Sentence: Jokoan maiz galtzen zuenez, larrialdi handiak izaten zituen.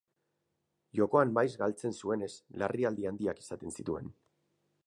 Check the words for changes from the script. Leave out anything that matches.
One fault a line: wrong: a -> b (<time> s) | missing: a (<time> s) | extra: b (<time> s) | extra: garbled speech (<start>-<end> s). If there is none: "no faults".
no faults